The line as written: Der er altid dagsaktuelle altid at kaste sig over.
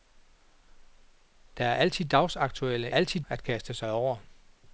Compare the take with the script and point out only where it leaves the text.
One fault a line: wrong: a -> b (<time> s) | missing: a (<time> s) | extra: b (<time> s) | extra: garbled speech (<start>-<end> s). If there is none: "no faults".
no faults